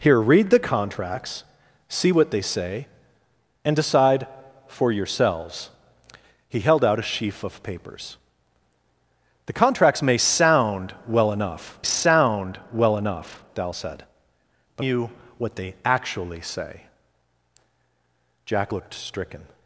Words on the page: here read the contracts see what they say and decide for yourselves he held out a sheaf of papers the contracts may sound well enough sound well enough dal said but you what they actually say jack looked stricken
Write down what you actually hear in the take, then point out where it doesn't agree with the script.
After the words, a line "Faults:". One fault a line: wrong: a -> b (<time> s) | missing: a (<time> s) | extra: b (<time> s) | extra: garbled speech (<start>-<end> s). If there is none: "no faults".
here read the contracts see what they say and decide for yourselves he held out a sheaf of papers the contracts may sound well enough sound well enough dal said but you what they actually say jack looked stricken
Faults:
no faults